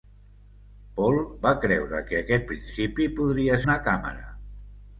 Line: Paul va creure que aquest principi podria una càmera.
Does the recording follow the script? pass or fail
pass